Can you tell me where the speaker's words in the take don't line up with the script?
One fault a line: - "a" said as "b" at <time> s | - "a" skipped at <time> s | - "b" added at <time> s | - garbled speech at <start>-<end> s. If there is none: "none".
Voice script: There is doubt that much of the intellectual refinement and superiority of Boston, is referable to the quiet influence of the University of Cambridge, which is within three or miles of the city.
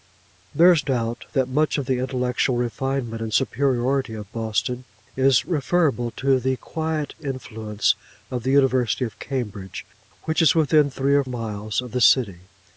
none